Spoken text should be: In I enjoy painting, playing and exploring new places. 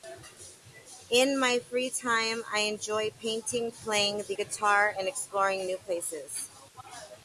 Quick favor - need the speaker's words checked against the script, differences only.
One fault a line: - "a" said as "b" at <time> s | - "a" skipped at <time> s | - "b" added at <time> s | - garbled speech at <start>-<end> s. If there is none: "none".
- "my free time" added at 1.4 s
- "the guitar" added at 4.2 s